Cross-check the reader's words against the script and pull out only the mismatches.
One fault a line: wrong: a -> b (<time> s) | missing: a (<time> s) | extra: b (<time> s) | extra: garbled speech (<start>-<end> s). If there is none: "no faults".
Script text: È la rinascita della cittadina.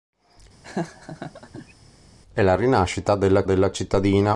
extra: della (3.4 s)